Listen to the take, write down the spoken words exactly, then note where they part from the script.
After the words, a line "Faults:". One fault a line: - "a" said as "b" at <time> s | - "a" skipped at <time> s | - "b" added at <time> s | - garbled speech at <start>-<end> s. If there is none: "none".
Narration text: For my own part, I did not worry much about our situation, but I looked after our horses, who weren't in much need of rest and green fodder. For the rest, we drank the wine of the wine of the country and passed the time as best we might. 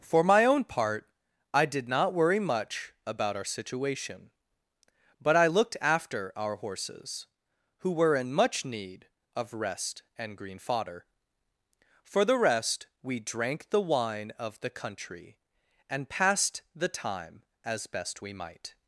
For my own part, I did not worry much about our situation, but I looked after our horses, who were in much need of rest and green fodder. For the rest, we drank the wine of the country and passed the time as best we might.
Faults:
- "weren't" said as "were" at 7.9 s
- "wine of the" skipped at 14.7 s